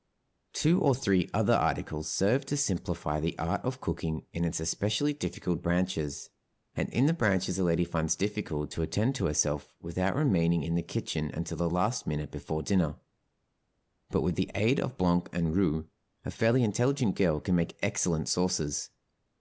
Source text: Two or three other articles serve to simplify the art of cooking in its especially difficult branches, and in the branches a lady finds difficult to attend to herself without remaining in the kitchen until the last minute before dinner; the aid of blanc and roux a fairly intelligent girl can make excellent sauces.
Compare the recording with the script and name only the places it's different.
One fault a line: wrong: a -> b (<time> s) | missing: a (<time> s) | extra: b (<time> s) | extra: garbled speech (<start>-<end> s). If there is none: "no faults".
extra: but with (14.1 s)